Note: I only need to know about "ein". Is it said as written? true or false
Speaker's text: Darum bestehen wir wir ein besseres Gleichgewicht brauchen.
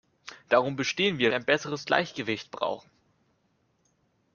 true